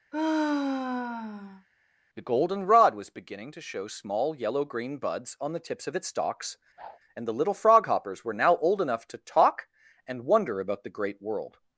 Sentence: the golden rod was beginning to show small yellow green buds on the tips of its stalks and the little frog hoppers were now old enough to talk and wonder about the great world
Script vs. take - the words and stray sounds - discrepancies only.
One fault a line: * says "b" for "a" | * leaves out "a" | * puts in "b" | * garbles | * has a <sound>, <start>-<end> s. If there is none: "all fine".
* has a sigh, 0.1-1.7 s
* has a whoosh, 6.8-7.0 s